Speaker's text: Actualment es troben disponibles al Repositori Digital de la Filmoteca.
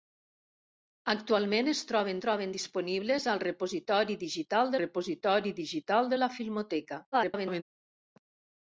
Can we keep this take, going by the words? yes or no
no